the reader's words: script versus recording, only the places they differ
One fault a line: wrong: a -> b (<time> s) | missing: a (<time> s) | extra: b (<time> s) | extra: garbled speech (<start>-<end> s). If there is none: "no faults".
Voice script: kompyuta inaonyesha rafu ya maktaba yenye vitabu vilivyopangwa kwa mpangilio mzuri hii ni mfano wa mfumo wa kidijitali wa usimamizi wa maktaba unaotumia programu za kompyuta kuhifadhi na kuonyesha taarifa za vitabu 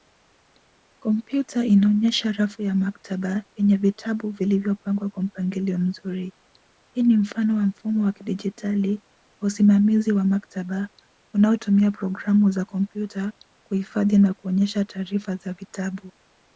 no faults